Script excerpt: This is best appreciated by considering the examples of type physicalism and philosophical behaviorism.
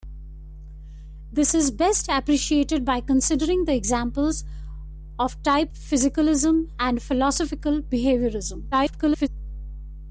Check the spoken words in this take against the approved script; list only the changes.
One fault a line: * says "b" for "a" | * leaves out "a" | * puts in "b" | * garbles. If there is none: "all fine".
* garbles